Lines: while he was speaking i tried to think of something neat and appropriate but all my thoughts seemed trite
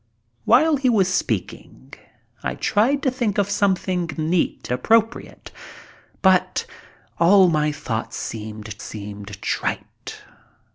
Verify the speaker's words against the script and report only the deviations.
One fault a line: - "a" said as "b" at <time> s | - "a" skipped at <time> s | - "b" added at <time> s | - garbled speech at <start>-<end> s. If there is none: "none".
- "and" skipped at 4.7 s
- "seemed" added at 8.8 s